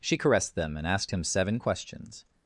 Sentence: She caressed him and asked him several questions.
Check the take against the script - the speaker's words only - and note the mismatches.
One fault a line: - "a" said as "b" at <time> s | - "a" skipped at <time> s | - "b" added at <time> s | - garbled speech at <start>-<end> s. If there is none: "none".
- "him" said as "them" at 0.6 s
- "several" said as "seven" at 1.2 s